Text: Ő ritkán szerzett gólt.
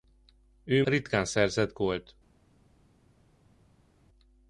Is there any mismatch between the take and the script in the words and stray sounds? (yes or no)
no